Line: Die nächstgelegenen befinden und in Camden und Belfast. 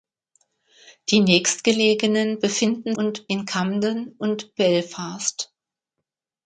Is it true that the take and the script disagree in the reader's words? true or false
false